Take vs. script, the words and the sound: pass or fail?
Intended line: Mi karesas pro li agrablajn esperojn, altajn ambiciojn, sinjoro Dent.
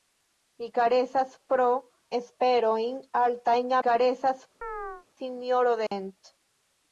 fail